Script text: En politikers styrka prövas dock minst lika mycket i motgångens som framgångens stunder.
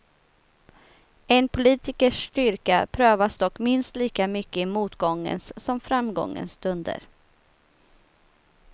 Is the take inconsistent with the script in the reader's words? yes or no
no